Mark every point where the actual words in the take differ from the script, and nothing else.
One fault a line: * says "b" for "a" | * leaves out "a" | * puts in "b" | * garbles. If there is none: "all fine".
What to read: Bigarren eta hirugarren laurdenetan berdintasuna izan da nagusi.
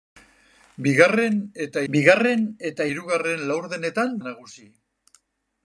* puts in "bigarren eta"
* leaves out "berdintasuna izan"